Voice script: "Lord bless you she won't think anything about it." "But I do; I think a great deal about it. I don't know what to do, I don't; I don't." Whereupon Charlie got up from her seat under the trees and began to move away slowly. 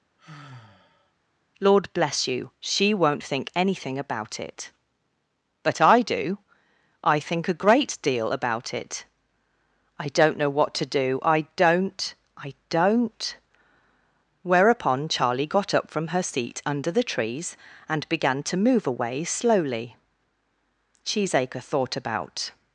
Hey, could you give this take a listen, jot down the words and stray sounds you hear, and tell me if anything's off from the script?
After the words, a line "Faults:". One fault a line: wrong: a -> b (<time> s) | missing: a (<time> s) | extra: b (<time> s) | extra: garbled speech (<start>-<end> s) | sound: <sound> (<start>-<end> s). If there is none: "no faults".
"Lord bless you she won't think anything about it." "But I do; I think a great deal about it. I don't know what to do, I don't; I don't." Whereupon Charlie got up from her seat under the trees and began to move away slowly. Cheesacre thought about
Faults:
sound: sigh (0.2-1.1 s)
extra: Cheesacre thought about (21.0 s)